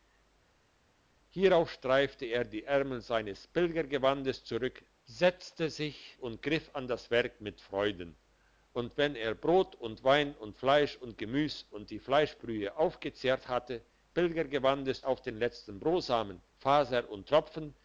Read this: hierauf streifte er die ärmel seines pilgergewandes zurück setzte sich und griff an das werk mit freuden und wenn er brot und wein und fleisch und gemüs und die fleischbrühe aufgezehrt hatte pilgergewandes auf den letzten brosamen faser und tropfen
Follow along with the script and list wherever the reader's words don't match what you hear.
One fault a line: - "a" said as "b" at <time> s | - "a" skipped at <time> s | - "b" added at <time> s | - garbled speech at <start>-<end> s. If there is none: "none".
none